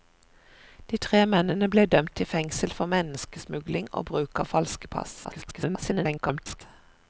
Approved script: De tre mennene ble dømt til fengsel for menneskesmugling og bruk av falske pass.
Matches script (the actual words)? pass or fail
fail